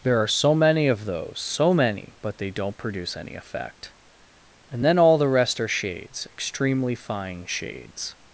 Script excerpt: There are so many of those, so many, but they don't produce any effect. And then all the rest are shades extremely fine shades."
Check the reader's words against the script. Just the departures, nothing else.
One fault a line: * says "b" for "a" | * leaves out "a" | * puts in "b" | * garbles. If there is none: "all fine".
all fine